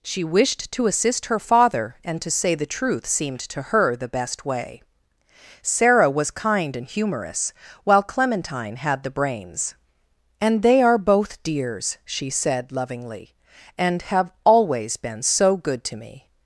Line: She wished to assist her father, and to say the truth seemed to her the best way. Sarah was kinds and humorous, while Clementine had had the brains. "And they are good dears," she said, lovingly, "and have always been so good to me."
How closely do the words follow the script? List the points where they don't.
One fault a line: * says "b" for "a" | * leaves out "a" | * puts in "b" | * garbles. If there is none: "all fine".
* says "kind" for "kinds"
* leaves out "had"
* says "both" for "good"